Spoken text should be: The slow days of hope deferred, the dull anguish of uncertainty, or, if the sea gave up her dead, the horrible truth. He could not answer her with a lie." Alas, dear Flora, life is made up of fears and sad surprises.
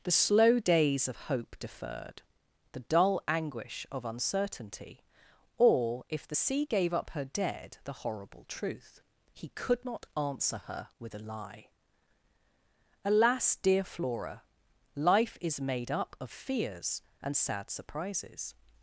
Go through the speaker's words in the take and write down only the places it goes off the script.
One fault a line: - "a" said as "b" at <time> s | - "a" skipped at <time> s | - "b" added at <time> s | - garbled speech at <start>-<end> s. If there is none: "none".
none